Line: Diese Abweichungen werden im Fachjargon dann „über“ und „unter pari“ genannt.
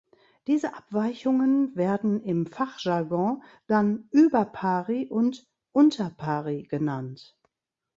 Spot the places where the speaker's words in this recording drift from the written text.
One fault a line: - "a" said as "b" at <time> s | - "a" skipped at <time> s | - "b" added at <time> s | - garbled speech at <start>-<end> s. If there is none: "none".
- "pari" added at 4.5 s